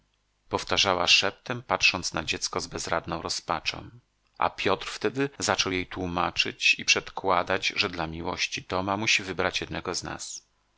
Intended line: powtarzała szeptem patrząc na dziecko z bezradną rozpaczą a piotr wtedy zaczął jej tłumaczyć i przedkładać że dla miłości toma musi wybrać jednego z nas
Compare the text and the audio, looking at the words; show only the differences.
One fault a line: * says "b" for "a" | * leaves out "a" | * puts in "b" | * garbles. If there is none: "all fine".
all fine